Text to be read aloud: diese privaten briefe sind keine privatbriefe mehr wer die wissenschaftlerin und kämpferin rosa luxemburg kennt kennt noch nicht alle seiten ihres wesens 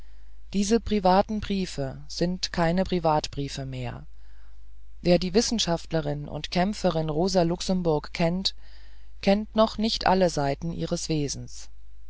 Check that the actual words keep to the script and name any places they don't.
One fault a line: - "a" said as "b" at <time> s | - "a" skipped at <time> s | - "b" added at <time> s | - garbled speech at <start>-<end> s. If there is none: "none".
none